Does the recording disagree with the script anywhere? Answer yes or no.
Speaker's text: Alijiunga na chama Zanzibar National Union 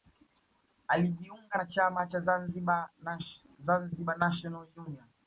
yes